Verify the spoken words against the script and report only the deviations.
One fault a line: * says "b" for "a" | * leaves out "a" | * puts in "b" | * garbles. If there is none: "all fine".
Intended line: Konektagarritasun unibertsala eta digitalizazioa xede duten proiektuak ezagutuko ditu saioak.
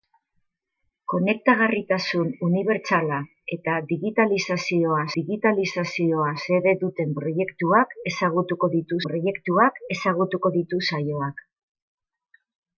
* puts in "digitalizazioa"
* puts in "proiektuak ezagutuko ditu"